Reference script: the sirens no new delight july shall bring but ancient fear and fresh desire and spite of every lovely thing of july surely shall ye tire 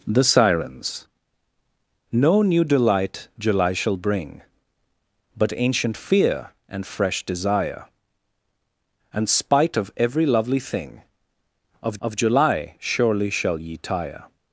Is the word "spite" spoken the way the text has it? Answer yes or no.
yes